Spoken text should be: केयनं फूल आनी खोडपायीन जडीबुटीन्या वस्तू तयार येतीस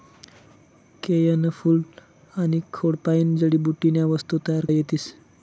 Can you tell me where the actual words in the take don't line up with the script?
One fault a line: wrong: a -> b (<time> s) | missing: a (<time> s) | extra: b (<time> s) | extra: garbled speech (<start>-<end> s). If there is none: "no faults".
no faults